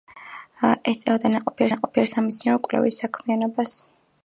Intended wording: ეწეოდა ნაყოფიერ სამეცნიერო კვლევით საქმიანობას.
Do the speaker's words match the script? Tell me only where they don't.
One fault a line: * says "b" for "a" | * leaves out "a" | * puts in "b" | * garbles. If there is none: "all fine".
* puts in "ნაყოფიერ"